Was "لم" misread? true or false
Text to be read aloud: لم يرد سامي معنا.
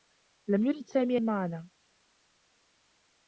false